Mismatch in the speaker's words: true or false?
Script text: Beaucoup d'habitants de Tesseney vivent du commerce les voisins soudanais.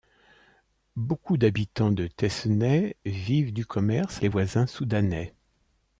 false